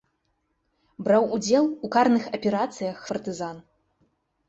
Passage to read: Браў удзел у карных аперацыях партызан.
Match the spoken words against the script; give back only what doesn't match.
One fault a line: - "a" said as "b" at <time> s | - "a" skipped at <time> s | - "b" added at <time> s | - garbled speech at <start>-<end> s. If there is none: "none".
none